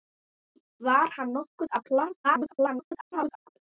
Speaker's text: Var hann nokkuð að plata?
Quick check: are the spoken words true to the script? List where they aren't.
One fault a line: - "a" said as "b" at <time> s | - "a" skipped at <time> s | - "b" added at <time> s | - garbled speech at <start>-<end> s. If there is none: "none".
- garbled speech at 2.2-3.5 s